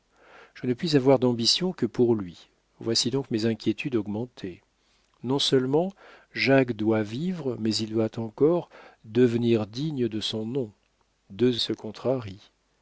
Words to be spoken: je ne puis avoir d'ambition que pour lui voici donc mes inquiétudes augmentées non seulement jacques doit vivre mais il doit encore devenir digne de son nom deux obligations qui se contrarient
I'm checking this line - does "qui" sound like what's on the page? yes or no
no